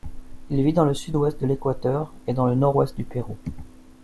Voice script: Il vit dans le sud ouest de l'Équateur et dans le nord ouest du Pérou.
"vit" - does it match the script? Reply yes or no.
yes